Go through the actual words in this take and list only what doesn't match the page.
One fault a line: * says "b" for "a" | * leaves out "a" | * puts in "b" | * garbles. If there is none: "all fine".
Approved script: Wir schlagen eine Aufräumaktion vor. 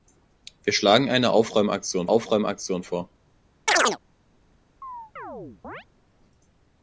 * puts in "Aufräumaktion"